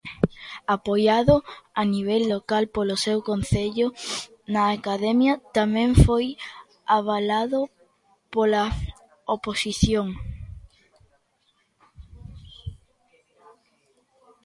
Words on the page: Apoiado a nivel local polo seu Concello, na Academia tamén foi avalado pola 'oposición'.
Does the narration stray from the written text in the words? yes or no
no